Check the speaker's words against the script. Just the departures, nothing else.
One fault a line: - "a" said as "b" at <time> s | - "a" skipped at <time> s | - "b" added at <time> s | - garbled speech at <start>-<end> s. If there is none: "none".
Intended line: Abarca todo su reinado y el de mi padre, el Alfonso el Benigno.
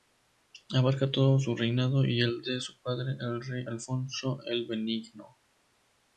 - "mi" said as "su" at 2.6 s
- "rey" added at 3.4 s